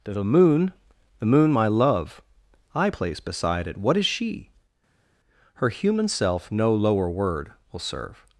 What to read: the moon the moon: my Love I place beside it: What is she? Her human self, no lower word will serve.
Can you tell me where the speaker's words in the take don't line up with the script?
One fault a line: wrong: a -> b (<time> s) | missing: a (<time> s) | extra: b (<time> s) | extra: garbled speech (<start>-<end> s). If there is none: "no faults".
no faults